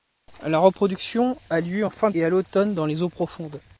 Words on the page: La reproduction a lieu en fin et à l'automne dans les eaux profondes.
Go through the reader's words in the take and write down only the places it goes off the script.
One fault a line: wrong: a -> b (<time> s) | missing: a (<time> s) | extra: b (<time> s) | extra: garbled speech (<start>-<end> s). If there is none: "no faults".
no faults